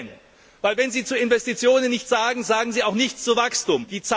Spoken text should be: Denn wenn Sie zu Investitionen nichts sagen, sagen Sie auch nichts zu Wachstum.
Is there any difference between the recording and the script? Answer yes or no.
no